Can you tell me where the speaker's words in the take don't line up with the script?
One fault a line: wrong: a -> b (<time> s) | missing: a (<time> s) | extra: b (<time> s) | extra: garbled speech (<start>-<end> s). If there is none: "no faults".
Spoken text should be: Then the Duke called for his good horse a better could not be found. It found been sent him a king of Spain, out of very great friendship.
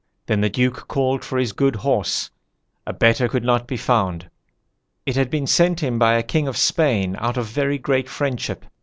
wrong: found -> had (5.2 s)
extra: by (6.0 s)